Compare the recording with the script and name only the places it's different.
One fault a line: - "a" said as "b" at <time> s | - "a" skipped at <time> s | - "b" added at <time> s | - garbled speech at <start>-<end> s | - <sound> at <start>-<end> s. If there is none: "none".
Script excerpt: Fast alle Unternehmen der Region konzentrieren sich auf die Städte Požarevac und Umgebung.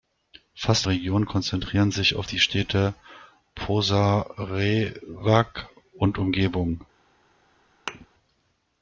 - "alle Unternehmen der" skipped at 0.9 s
- thud at 7.9-8.1 s